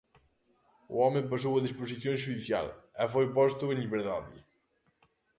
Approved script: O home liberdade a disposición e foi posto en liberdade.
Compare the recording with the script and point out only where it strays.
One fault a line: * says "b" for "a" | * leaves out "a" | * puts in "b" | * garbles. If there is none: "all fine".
* says "pasou" for "liberdade"
* puts in "xudicial"